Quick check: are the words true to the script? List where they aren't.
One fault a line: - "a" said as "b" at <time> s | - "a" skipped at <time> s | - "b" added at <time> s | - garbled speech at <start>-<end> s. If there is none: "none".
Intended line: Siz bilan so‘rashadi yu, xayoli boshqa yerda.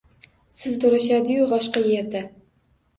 - "bilan" skipped at 0.8 s
- "xayoli" skipped at 1.5 s